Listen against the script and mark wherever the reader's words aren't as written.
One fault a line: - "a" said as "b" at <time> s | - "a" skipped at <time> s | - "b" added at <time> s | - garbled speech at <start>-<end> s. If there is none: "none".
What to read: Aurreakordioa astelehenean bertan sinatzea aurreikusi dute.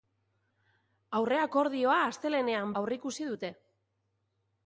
- "bertan sinatzea" skipped at 2.7 s